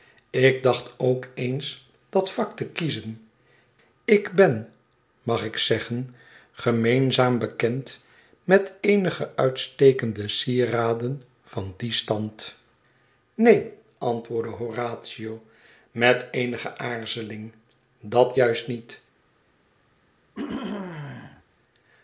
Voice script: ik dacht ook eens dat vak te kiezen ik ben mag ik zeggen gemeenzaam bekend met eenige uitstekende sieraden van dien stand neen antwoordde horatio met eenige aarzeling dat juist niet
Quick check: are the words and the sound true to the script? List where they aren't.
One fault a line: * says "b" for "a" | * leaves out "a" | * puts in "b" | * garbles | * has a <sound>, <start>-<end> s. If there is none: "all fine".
* has a throat clearing, 20.3-21.4 s